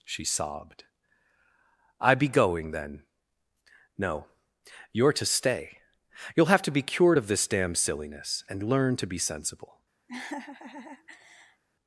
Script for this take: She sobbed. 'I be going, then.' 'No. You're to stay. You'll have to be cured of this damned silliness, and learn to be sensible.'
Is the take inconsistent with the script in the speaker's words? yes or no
yes